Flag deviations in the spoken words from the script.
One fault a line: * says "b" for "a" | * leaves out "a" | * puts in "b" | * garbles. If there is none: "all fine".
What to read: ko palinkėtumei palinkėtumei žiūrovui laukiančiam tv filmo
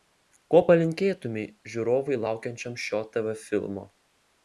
* leaves out "palinkėtumei"
* puts in "šio"